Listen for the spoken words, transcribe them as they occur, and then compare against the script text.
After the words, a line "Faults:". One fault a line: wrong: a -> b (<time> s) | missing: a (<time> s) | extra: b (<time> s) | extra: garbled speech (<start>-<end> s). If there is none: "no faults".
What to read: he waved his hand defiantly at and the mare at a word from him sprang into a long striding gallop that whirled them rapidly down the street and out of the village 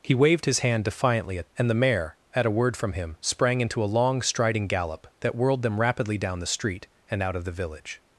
he waved his hand defiantly at and the mare at a word from him sprang into a long striding gallop that whirled them rapidly down the street and out of the village
Faults:
no faults